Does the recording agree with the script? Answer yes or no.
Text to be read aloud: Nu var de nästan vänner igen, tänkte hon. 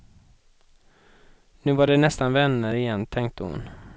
yes